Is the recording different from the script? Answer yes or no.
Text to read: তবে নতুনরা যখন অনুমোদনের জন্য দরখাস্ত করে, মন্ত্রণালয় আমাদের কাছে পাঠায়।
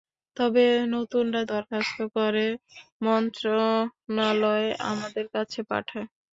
yes